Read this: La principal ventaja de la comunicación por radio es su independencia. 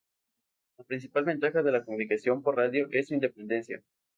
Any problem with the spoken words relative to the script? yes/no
no